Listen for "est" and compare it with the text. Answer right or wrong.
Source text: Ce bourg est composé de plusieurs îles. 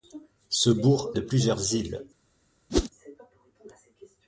wrong